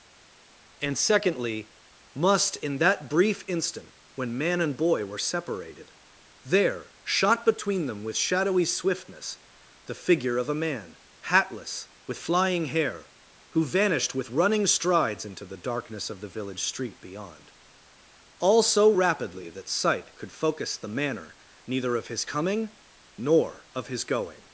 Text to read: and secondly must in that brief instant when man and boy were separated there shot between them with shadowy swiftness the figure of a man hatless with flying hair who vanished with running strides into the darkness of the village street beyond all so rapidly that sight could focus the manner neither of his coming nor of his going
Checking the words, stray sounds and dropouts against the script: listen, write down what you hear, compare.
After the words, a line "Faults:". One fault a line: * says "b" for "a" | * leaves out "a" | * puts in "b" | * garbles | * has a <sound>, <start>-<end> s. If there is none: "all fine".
and secondly must in that brief instant when man and boy were separated there shot between them with shadowy swiftness the figure of a man hatless with flying hair who vanished with running strides into the darkness of the village street beyond all so rapidly that sight could focus the manner neither of his coming nor of his going
Faults:
all fine